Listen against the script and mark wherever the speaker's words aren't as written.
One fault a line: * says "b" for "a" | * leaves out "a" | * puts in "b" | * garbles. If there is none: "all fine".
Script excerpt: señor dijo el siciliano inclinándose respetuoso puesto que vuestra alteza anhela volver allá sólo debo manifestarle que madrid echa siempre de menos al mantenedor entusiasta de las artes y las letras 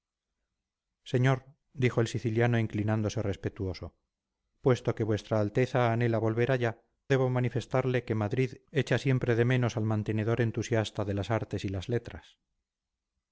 * leaves out "sólo"